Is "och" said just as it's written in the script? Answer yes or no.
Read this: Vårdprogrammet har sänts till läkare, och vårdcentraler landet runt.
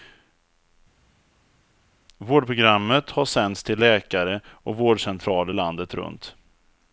yes